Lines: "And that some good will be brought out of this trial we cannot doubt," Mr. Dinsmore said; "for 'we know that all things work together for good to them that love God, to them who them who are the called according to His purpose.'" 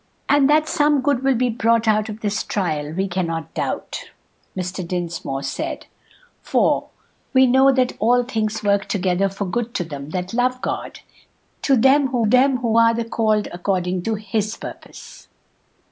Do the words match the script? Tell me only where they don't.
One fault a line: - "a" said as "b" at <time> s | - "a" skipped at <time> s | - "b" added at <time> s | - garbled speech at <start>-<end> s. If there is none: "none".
none